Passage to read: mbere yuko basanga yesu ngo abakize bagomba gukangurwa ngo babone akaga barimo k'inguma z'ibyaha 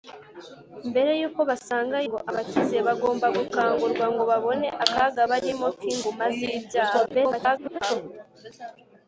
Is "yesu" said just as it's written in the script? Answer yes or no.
no